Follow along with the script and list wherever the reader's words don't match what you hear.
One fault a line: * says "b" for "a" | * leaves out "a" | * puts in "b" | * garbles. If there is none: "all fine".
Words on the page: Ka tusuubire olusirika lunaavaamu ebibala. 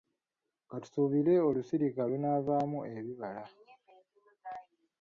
all fine